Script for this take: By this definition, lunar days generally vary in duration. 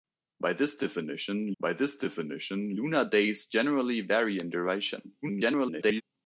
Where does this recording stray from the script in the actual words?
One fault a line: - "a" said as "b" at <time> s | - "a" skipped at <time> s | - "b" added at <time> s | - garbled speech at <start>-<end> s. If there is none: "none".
- "by this definition" added at 1.6 s
- garbled speech at 5.2-6.0 s